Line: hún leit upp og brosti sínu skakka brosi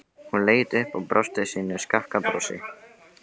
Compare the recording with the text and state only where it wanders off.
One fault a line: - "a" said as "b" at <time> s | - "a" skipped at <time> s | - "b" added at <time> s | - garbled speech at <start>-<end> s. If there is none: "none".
none